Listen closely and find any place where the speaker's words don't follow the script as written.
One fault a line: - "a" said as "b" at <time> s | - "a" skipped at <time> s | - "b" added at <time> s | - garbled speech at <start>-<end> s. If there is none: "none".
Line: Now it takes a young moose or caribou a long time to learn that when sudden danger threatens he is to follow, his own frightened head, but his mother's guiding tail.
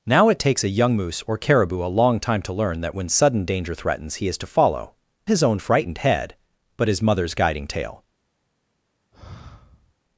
none